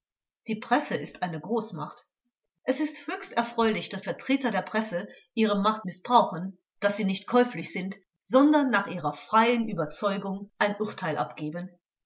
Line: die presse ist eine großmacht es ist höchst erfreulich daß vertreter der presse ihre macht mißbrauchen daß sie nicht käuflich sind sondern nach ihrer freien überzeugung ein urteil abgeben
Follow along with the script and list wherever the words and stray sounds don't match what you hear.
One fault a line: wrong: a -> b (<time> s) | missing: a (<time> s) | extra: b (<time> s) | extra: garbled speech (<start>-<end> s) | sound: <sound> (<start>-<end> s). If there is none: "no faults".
no faults